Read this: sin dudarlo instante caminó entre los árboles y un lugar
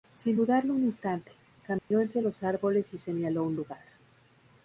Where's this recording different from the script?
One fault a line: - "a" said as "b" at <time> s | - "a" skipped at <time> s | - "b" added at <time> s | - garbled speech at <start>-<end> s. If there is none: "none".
- "un" added at 0.7 s
- "señaló" added at 3.0 s